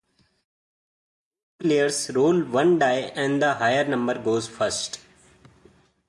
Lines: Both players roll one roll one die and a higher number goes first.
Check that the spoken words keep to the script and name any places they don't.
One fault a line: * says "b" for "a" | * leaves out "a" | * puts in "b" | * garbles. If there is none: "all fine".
* leaves out "roll one"
* says "the" for "a"